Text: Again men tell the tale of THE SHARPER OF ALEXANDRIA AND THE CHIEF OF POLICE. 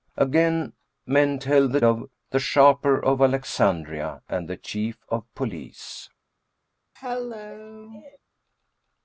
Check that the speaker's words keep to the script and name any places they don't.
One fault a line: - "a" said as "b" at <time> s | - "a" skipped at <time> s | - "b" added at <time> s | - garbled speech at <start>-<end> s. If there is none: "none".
- "tale" skipped at 1.8 s